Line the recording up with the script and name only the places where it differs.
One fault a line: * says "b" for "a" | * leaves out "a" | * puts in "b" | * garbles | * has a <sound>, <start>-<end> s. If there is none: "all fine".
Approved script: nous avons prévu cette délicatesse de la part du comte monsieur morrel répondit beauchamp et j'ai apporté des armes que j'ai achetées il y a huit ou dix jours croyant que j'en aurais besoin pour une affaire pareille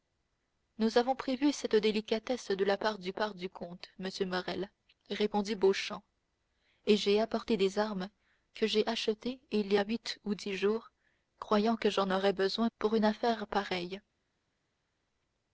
* puts in "part du"